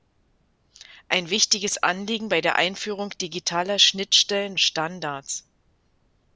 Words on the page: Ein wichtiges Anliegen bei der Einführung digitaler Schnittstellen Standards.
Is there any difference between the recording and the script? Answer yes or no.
no